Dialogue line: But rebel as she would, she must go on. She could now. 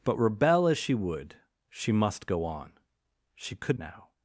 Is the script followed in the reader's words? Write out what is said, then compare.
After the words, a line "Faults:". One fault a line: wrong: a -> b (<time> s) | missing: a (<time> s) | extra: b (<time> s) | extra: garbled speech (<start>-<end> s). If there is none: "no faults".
But rebel as she would, she must go on. She could now.
Faults:
no faults